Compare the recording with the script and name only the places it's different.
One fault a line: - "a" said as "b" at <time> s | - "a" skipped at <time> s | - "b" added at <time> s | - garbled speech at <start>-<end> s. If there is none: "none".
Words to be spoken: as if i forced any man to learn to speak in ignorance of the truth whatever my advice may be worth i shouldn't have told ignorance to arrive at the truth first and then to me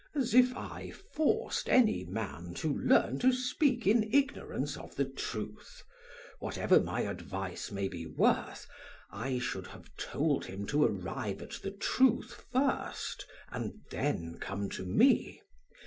- "shouldn't" said as "should" at 9.4 s
- "ignorance" said as "him" at 10.4 s
- "come" added at 14.4 s